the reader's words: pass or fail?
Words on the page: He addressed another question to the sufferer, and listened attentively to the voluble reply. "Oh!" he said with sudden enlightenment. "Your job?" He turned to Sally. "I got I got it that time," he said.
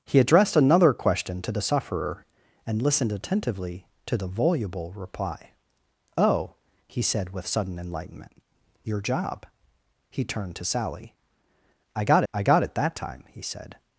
pass